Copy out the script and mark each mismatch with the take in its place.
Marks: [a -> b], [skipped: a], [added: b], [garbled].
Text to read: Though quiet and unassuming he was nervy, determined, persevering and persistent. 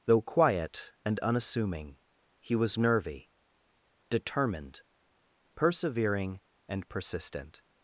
Though quiet and unassuming he was nervy, determined, persevering and persistent.